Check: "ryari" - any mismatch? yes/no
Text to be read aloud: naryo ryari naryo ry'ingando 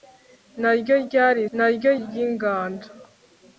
no